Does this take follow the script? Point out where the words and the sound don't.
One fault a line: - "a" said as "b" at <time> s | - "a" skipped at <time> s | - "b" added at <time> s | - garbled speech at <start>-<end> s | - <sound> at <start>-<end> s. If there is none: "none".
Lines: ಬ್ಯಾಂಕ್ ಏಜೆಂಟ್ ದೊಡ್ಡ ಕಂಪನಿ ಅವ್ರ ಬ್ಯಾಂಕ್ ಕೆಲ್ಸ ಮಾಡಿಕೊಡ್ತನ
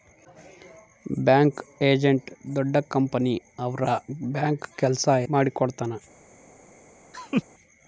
- laugh at 7.1-7.4 s